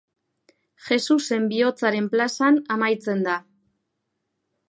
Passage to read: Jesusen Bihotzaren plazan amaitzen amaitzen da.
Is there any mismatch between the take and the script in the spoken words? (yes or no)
yes